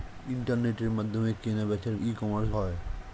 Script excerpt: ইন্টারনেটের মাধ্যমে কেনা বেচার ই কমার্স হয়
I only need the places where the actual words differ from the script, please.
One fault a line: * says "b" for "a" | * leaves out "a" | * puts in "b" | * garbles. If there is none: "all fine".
all fine